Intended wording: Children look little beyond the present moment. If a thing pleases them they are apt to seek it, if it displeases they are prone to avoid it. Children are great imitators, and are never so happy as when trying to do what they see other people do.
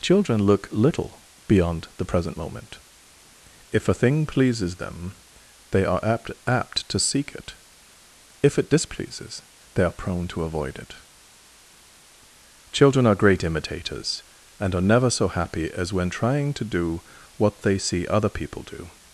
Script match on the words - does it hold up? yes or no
no